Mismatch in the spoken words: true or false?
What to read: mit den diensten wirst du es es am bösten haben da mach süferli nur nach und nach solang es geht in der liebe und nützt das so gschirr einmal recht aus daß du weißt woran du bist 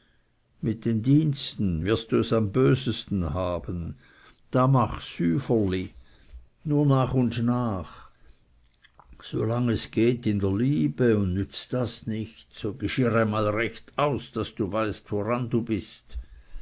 true